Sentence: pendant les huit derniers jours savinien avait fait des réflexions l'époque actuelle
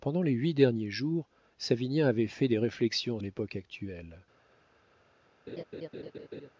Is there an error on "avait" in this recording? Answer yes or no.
no